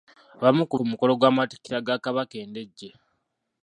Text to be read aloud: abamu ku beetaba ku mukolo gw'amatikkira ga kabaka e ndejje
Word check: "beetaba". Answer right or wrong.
wrong